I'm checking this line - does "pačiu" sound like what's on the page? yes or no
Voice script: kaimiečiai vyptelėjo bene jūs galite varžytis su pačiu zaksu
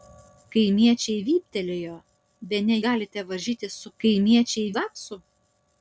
no